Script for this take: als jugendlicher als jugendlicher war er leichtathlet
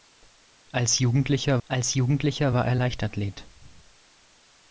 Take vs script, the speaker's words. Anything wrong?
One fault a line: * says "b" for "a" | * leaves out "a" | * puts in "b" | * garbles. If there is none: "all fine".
all fine